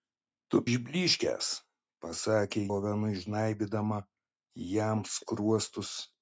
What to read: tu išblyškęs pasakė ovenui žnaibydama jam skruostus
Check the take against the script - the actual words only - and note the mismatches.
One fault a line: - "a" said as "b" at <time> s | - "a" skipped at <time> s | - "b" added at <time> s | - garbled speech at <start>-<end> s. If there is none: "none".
none